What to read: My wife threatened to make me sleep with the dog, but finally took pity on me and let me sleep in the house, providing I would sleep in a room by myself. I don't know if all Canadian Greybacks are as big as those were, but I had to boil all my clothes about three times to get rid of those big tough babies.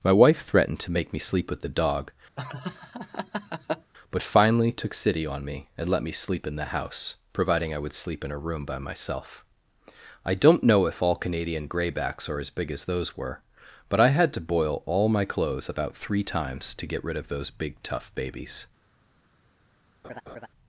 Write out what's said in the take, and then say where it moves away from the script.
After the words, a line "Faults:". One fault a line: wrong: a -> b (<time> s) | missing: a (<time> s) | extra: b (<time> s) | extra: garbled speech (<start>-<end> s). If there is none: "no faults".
My wife threatened to make me sleep with the dog, but finally took city on me and let me sleep in the house, providing I would sleep in a room by myself. I don't know if all Canadian Greybacks are as big as those were, but I had to boil all my clothes about three times to get rid of those big tough babies.
Faults:
wrong: pity -> city (4.9 s)